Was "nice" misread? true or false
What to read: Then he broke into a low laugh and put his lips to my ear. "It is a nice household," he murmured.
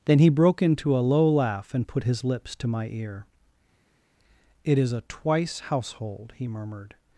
true